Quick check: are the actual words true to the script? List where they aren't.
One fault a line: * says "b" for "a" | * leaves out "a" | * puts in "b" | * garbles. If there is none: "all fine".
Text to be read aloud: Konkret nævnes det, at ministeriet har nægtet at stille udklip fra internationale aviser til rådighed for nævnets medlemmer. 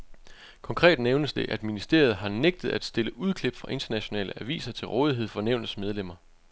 all fine